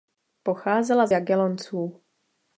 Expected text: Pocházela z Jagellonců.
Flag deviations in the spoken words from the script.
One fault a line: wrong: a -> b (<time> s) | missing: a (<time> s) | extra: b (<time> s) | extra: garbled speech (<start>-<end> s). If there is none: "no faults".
no faults